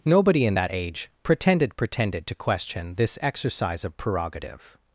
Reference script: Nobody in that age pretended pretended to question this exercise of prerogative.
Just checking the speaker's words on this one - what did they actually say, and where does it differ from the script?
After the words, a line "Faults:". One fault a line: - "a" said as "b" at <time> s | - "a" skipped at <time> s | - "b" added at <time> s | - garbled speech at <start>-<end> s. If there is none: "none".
Nobody in that age pretended pretended to question this exercise of prerogative.
Faults:
none